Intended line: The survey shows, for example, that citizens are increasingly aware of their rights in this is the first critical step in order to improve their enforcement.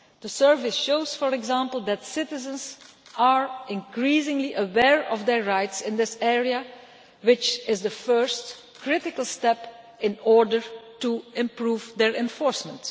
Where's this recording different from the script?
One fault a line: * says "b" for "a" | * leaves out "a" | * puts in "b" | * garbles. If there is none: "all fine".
* puts in "area which"